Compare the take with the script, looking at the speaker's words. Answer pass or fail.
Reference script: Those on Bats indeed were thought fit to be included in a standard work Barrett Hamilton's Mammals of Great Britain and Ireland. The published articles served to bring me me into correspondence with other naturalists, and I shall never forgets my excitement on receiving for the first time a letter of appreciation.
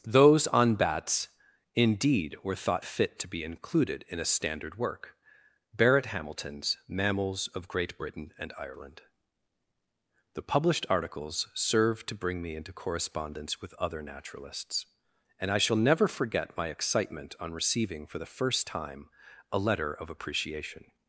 fail